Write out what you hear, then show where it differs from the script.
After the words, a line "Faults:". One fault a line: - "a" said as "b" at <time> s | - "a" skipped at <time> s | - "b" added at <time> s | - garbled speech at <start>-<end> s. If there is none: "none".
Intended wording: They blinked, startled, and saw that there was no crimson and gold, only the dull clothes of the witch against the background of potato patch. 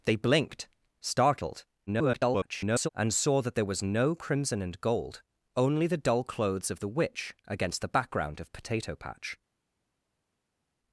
They blinked, startled, [garbled] and saw that there was no crimson and gold, only the dull clothes of the witch against the background of potato patch.
Faults:
- garbled speech at 1.9-2.9 s